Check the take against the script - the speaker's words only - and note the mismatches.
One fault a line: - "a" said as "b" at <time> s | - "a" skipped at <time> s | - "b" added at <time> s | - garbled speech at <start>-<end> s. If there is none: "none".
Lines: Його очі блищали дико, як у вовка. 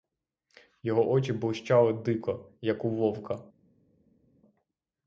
none